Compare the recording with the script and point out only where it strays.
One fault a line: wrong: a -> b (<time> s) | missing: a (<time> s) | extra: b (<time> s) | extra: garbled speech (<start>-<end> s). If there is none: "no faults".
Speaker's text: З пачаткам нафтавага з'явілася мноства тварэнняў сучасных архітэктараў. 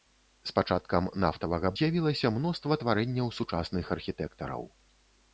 no faults